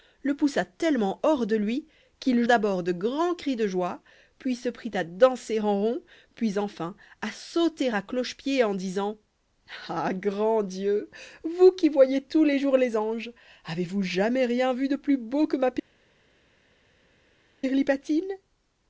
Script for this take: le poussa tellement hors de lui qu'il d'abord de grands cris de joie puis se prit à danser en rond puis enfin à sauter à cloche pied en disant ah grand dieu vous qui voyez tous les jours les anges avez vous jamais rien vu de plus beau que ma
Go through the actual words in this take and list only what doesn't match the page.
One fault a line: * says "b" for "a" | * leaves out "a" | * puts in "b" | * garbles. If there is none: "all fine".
all fine